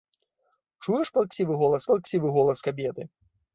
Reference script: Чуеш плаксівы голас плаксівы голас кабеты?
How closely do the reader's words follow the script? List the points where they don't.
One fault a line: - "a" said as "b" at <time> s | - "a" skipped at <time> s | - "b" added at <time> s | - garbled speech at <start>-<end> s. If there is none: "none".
none